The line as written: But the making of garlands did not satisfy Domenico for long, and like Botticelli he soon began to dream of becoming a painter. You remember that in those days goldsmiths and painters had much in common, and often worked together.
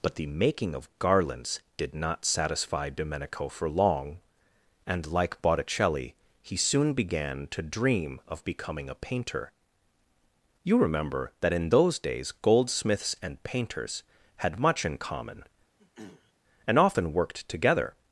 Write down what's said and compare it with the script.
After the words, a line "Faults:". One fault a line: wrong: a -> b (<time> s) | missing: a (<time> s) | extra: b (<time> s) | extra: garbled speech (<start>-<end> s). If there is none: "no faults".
But the making of garlands did not satisfy Domenico for long, and like Botticelli he soon began to dream of becoming a painter. You remember that in those days goldsmiths and painters had much in common, and often worked together.
Faults:
no faults